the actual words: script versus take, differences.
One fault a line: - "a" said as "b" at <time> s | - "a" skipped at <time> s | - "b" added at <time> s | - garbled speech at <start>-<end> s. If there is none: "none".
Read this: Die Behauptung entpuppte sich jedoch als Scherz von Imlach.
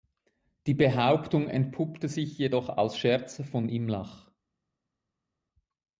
none